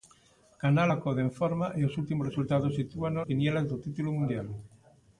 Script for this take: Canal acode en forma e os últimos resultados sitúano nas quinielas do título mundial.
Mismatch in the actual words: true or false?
true